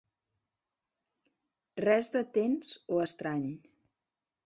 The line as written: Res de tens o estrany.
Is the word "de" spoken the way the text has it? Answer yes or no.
yes